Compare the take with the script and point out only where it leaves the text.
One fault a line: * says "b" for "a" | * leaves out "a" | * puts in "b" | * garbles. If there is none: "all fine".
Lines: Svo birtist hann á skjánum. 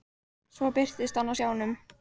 all fine